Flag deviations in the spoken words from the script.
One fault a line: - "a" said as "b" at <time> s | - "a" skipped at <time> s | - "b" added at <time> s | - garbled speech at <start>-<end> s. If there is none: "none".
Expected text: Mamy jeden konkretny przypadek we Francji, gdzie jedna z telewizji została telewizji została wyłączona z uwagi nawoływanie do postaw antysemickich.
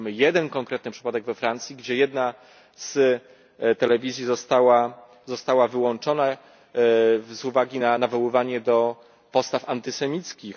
- "telewizji została" skipped at 5.7 s
- "na" added at 7.8 s